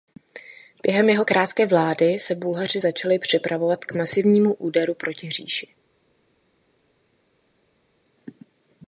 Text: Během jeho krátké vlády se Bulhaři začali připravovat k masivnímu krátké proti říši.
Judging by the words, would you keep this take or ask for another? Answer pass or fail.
fail